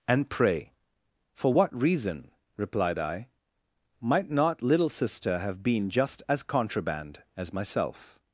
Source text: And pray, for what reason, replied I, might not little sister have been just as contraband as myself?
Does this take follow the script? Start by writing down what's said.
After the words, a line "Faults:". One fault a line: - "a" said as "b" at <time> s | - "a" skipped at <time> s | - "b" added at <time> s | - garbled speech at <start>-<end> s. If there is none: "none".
And pray, for what reason, replied I, might not little sister have been just as contraband as myself?
Faults:
none